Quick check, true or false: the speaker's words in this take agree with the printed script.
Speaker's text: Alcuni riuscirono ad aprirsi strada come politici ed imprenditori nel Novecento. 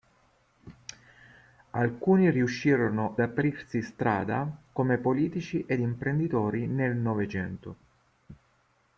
false